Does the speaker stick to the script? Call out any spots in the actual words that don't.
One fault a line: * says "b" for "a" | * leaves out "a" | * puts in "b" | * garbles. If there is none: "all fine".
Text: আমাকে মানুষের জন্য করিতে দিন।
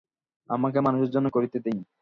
all fine